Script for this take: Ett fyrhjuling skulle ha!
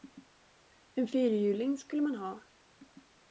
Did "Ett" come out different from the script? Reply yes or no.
yes